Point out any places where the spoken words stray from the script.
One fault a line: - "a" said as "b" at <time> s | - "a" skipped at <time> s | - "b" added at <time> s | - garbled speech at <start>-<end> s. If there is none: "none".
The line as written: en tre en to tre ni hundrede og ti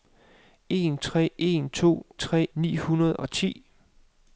none